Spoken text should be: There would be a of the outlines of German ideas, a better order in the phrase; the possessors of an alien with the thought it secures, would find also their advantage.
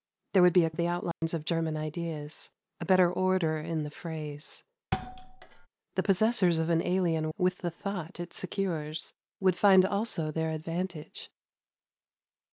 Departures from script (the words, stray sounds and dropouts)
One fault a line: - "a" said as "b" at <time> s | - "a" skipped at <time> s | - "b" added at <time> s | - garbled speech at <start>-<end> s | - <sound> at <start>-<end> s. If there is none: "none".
- dropout at 1.1-1.2 s
- thud at 4.9-5.7 s